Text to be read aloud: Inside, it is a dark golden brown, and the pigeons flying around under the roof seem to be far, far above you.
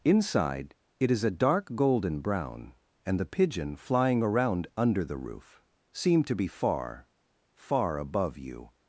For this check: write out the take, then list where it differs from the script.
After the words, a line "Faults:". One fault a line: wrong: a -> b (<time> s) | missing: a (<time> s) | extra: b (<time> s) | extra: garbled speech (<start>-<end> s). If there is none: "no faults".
Inside, it is a dark golden brown, and the pigeon flying around under the roof seem to be far, far above you.
Faults:
wrong: pigeons -> pigeon (3.2 s)